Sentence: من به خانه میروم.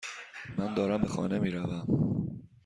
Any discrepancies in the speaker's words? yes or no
yes